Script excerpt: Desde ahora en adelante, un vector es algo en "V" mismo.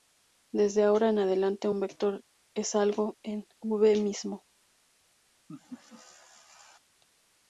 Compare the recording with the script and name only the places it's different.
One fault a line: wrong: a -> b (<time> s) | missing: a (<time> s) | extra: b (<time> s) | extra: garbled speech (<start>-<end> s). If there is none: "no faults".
no faults